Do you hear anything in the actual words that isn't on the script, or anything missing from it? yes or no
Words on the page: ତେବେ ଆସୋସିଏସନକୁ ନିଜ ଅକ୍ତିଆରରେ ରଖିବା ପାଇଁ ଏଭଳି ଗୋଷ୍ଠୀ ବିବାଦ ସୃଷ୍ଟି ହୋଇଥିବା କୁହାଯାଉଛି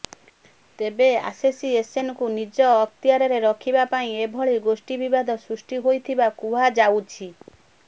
no